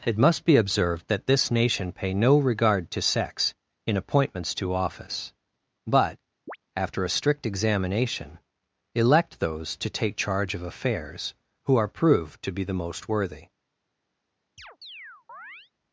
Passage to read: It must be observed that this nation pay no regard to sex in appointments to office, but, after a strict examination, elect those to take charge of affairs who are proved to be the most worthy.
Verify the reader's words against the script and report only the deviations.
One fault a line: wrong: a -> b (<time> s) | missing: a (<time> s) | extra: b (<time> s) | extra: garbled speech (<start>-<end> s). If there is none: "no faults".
no faults